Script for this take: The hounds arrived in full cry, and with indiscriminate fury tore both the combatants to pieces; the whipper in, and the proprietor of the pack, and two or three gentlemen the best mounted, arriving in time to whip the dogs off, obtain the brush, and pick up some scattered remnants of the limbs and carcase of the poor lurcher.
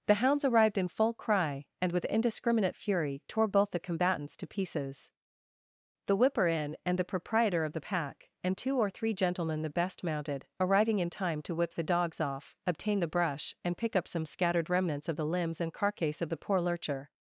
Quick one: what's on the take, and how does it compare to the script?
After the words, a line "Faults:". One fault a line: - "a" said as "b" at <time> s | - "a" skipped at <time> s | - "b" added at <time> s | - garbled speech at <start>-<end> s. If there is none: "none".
The hounds arrived in full cry, and with indiscriminate fury tore both the combatants to pieces; the whipper in, and the proprietor of the pack, and two or three gentlemen the best mounted, arriving in time to whip the dogs off, obtain the brush, and pick up some scattered remnants of the limbs and carcase of the poor lurcher.
Faults:
none